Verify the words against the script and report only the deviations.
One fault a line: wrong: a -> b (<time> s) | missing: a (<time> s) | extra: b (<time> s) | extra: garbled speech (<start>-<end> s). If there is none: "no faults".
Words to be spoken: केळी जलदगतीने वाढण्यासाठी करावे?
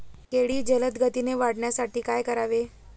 extra: काय (2.0 s)